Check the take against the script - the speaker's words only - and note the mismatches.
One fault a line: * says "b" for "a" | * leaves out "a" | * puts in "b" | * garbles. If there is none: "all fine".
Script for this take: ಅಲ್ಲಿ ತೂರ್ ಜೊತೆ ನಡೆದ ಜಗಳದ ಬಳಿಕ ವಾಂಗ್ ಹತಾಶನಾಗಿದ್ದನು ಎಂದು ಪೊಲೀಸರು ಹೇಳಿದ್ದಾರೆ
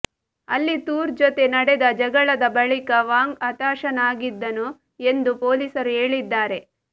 all fine